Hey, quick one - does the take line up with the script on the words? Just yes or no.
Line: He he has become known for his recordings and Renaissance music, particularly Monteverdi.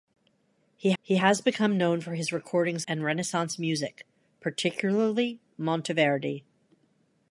yes